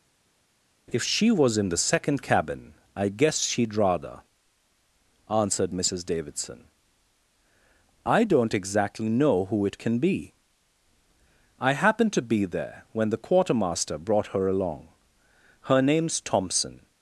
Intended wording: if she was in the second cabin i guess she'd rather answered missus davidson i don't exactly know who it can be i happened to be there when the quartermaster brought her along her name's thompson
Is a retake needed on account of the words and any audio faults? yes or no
no